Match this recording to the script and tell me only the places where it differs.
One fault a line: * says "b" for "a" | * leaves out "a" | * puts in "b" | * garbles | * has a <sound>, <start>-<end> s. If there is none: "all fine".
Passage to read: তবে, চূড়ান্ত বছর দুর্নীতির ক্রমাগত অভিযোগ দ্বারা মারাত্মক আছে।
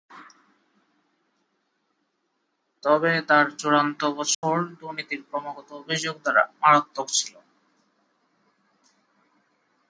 * puts in "তার"
* has a dropout, 4.3-4.4 s
* says "ছিল" for "আছে"